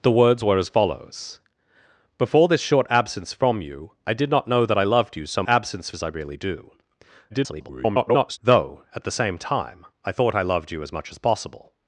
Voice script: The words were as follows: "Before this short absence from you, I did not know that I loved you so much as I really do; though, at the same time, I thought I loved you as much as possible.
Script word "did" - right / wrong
right